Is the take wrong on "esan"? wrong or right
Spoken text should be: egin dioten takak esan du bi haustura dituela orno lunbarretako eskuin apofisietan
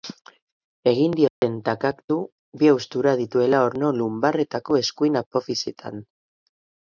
wrong